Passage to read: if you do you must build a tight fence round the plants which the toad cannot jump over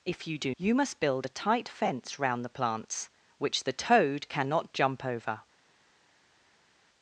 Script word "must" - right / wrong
right